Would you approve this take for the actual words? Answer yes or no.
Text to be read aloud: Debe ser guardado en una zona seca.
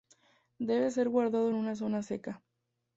yes